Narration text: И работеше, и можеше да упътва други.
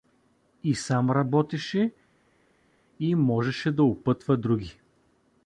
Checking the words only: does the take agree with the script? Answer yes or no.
no